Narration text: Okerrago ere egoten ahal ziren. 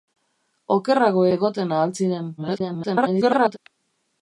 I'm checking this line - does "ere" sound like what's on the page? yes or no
no